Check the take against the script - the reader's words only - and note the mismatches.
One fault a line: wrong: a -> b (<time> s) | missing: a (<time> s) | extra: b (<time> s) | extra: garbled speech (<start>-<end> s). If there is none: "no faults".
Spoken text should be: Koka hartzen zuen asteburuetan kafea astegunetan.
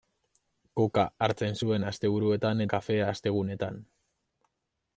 no faults